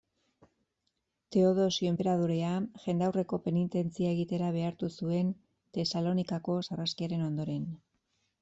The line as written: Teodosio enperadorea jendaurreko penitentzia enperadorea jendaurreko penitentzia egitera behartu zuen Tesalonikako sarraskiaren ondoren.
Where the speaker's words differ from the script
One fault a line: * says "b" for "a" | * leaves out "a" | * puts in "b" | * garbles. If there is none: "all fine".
* leaves out "enperadorea jendaurreko penitentzia"